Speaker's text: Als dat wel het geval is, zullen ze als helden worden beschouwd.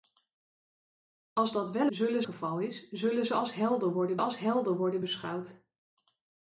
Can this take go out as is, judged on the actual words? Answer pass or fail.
fail